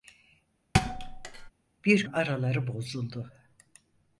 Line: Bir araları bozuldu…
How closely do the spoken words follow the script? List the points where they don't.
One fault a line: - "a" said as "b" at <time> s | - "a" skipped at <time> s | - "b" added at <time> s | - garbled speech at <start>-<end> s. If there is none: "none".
none